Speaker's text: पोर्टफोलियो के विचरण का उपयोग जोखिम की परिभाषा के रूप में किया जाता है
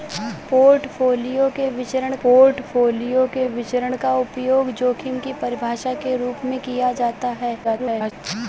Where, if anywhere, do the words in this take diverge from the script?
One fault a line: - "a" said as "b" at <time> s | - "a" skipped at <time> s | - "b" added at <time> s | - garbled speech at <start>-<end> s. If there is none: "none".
- "पोर्टफोलियो के विचरण" added at 2.2 s
- garbled speech at 7.6-8.1 s